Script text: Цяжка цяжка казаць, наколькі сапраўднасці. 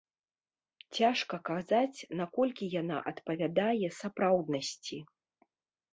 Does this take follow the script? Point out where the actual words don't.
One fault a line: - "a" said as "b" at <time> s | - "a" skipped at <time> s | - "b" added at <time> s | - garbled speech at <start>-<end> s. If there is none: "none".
- "цяжка" skipped at 1.4 s
- "яна адпавядае" added at 2.8 s